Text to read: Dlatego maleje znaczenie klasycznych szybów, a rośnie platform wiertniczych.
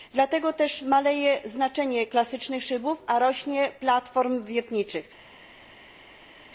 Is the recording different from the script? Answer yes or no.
yes